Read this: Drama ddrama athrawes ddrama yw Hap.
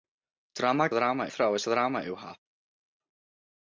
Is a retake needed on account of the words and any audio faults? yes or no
no